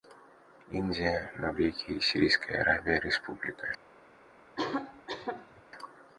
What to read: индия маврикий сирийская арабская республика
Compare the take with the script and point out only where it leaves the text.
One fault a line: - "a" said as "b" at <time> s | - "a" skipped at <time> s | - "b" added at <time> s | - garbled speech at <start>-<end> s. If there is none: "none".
none